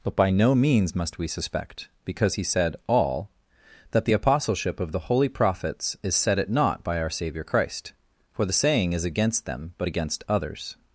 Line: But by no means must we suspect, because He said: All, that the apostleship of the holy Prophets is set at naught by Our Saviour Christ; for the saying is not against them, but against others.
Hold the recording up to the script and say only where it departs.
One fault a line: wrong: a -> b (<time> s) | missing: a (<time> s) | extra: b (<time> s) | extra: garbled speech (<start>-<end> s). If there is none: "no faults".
missing: not (9.0 s)